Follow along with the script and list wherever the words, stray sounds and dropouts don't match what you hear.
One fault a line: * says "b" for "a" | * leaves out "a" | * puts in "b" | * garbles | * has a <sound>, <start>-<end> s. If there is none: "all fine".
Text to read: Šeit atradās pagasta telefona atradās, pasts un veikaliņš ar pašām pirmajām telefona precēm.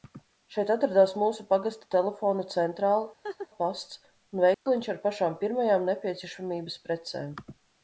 * puts in "mūsu"
* says "centrāle" for "atradās"
* has a laugh, 3.2-3.5 s
* has a dropout, 4.5-4.7 s
* says "nepieciešamības" for "telefona"